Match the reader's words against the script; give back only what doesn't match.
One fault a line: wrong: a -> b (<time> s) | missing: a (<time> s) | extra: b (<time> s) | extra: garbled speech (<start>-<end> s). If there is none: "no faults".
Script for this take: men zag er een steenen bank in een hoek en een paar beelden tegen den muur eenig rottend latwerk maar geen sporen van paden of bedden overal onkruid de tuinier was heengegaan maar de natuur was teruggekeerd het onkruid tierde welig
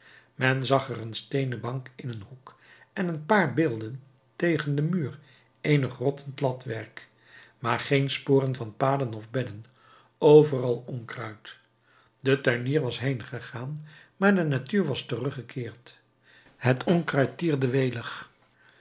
no faults